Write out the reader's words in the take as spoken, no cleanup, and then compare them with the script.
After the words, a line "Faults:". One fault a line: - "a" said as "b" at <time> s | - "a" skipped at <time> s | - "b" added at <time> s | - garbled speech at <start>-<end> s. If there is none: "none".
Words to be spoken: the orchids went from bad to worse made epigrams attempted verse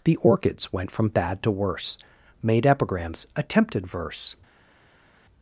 the orchids went from bad to worse made epigrams attempted verse
Faults:
none